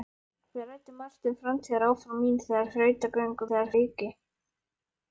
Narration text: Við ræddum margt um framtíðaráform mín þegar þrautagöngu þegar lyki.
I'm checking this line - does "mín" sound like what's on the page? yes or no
yes